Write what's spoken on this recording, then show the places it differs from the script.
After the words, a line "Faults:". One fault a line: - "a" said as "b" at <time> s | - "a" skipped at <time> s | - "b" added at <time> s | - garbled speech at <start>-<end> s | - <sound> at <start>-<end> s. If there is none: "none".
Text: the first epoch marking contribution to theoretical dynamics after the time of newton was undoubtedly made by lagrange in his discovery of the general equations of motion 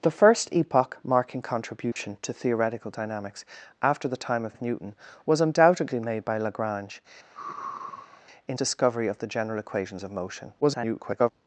the first epoch marking contribution to theoretical dynamics after the time of of newton was undoubtedly made by lagrange in discovery of the general equations of motion [garbled]
Faults:
- dropout at 1.9-2.0 s
- "of" added at 4.5 s
- sigh at 7.3-8.2 s
- "his" skipped at 8.6 s
- garbled speech at 10.6-11.3 s